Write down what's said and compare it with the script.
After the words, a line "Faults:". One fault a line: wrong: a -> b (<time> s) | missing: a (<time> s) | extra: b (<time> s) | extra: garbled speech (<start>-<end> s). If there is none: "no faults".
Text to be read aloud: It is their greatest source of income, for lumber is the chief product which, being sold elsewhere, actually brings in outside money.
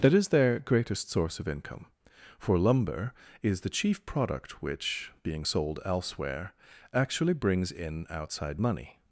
That is their greatest source of income, for lumber is the chief product which, being sold elsewhere, actually brings in outside money.
Faults:
wrong: It -> That (0.0 s)